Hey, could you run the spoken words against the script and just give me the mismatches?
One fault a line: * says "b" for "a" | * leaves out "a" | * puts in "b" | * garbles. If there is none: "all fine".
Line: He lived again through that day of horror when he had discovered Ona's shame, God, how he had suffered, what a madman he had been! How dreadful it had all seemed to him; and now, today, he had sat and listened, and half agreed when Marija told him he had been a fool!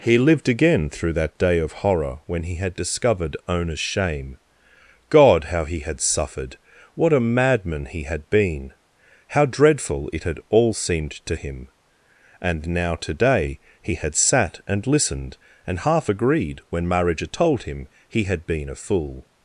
all fine